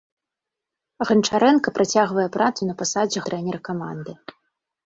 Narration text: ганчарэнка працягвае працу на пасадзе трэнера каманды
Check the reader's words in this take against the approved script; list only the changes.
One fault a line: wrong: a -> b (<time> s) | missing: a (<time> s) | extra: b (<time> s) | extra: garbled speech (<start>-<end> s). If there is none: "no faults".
no faults